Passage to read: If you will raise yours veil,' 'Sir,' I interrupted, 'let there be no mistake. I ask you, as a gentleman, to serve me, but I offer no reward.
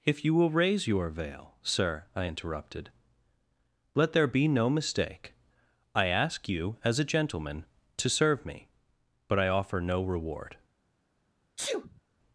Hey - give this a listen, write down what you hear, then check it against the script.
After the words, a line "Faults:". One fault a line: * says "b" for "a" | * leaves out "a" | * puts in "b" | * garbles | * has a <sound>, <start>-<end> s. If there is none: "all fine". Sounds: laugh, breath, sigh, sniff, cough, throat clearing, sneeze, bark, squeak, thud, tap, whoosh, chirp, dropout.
If you will raise your veil,' 'Sir,' I interrupted, 'let there be no mistake. I ask you, as a gentleman, to serve me, but I offer no reward.
Faults:
* says "your" for "yours"
* has a sneeze, 11.6-12.0 s